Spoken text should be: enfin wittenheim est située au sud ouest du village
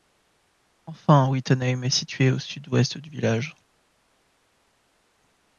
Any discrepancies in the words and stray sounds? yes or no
no